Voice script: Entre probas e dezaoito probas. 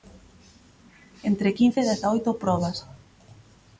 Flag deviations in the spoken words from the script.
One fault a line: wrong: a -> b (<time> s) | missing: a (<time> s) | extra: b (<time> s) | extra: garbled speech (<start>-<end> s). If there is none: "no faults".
wrong: probas -> quince (1.6 s)